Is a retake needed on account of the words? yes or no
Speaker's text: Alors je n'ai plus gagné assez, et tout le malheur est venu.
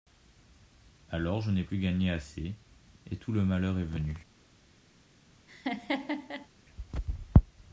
no